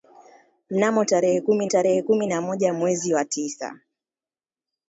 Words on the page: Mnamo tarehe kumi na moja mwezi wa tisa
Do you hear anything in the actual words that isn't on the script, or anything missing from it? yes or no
yes